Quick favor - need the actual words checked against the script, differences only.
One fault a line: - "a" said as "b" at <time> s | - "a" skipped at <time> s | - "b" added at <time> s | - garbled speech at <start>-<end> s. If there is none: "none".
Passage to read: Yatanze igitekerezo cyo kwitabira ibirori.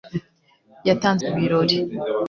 - "igitekerezo cyo kwitabira" skipped at 1.2 s